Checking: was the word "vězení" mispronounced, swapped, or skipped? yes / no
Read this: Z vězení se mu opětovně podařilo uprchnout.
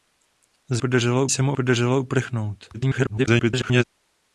yes